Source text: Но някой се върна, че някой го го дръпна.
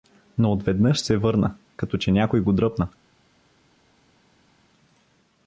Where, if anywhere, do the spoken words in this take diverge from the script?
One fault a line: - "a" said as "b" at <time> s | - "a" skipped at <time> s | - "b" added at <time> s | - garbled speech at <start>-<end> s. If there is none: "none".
- "някой" said as "отведнъж" at 0.5 s
- "като" added at 1.8 s
- "го" skipped at 2.5 s